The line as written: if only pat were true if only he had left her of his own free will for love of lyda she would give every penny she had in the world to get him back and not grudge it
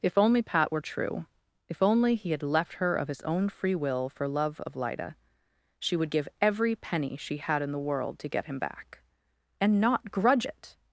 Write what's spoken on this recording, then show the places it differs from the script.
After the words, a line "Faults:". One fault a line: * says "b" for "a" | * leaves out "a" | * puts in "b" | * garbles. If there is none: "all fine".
if only pat were true if only he had left her of his own free will for love of lyda she would give every penny she had in the world to get him back and not grudge it
Faults:
all fine